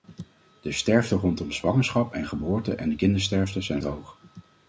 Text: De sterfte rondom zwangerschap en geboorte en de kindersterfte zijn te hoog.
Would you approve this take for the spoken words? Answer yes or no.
yes